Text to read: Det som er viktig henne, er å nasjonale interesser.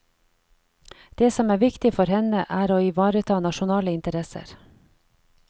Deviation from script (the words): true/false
true